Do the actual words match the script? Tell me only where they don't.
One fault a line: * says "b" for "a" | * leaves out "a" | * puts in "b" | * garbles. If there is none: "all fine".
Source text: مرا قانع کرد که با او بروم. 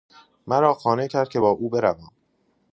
all fine